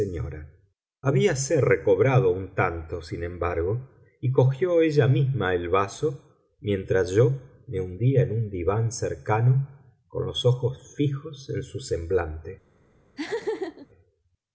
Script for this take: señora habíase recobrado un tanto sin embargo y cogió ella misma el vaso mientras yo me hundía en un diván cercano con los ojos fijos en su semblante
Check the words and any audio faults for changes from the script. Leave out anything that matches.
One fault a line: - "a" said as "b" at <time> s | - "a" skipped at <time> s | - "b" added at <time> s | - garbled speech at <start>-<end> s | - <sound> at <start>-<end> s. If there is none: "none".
- laugh at 13.2-13.9 s